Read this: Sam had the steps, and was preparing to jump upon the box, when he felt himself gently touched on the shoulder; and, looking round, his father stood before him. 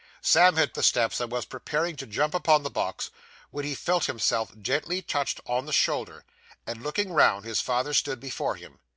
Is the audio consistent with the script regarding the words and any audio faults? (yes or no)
yes